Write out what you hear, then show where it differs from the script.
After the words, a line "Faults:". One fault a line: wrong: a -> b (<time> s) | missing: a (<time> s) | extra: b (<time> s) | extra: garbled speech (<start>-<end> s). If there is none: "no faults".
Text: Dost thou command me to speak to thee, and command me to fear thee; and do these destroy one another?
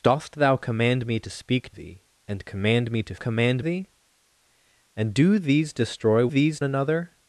Dost thou command me to speak thee, and command me to command thee; and do these destroy these another?
Faults:
missing: to (1.7 s)
wrong: fear -> command (3.2 s)
wrong: one -> these (6.3 s)